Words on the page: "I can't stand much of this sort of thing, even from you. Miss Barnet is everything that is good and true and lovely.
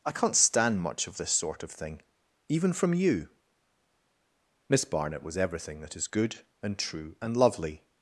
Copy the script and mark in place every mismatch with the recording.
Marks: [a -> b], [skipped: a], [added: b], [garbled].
"I can't stand much of this sort of thing, even from you. Miss Barnet [is -> was] everything that is good and true and lovely.